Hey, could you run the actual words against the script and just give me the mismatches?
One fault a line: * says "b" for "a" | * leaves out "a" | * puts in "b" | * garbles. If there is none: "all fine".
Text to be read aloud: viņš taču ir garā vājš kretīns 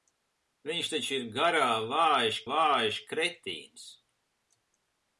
* puts in "vājš"